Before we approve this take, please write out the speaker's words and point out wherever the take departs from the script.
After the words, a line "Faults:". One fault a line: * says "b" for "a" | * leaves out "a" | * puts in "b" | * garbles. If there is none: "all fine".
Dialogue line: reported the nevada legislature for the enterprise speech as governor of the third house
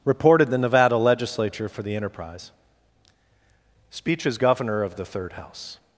reported the nevada legislature for the enterprise speech as governor of the third house
Faults:
all fine